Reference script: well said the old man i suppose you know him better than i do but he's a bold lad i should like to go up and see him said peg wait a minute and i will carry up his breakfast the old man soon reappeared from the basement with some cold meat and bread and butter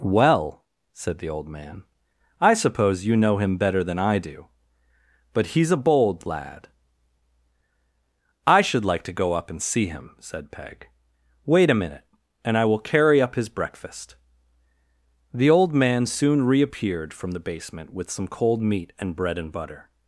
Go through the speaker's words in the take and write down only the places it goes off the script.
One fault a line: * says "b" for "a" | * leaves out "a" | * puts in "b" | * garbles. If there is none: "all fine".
all fine